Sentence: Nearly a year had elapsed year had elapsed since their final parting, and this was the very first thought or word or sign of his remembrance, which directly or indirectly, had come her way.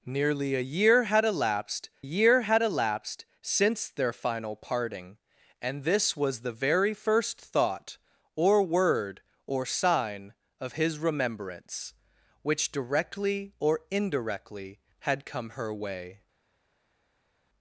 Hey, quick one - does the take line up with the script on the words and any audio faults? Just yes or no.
yes